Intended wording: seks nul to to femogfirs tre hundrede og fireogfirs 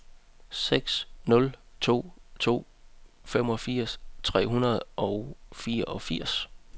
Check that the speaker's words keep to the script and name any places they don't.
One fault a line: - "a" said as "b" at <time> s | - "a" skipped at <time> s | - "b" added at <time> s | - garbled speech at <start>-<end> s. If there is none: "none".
none